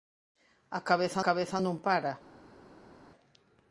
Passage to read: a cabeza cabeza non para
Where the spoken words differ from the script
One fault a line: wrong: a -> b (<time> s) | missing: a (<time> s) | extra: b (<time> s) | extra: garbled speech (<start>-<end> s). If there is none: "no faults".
no faults